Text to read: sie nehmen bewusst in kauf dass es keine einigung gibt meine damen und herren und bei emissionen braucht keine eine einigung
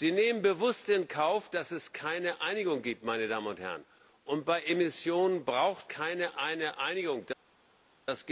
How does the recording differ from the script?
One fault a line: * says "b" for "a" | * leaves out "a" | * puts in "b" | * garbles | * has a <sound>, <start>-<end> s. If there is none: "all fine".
all fine